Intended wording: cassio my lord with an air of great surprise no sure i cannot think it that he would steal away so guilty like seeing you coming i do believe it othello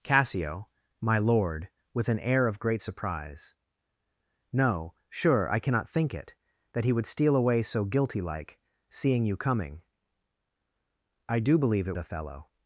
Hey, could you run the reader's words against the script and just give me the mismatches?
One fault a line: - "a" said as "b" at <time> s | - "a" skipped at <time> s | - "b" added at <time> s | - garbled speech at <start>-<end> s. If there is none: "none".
none